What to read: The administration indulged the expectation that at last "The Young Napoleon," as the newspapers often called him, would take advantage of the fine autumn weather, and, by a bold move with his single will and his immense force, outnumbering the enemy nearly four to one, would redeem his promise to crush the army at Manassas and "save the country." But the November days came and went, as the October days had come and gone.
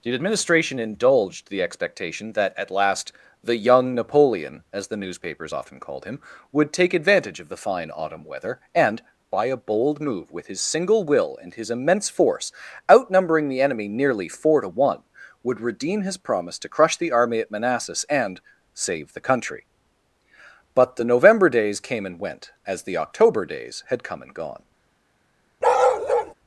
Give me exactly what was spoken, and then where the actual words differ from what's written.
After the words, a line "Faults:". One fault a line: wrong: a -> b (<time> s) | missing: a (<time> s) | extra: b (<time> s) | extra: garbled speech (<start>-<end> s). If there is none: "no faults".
The administration indulged the expectation that at last "The Young Napoleon," as the newspapers often called him, would take advantage of the fine autumn weather, and, by a bold move with his single will and his immense force, outnumbering the enemy nearly four to one, would redeem his promise to crush the army at Manassas and "save the country." But the November days came and went, as the October days had come and gone.
Faults:
no faults